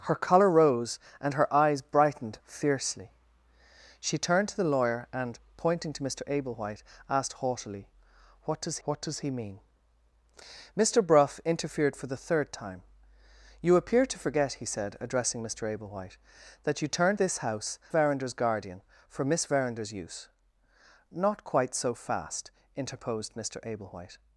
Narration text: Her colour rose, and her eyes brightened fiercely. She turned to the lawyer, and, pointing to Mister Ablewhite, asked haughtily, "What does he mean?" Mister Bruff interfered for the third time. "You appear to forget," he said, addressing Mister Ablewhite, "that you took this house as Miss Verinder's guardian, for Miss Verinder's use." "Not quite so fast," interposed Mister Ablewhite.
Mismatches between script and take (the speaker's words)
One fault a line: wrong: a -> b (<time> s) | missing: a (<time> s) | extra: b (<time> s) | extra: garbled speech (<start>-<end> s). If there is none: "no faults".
extra: what does (8.8 s)
wrong: took -> turned (16.9 s)
missing: as Miss (17.8 s)